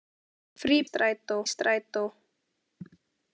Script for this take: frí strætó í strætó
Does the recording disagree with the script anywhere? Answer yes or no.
no